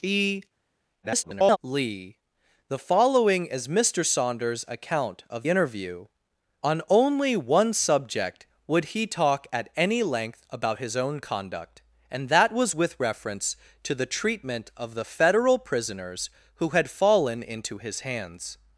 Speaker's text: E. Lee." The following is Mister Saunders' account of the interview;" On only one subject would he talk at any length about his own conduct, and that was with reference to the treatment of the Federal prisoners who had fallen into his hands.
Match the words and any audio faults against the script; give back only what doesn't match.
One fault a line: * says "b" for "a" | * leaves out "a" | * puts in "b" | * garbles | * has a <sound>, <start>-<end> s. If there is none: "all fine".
* garbles
* leaves out "the"